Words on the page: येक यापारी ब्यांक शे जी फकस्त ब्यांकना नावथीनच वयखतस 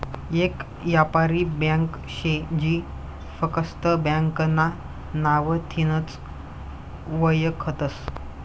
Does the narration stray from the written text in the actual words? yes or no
no